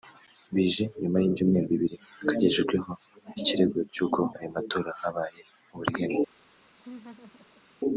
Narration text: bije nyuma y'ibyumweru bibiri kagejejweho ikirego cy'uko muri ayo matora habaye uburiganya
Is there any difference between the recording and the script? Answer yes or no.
yes